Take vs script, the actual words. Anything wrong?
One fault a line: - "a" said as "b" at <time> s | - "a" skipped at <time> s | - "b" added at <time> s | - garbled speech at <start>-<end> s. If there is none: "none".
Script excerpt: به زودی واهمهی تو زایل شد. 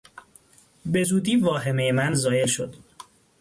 - "تو" said as "من" at 1.9 s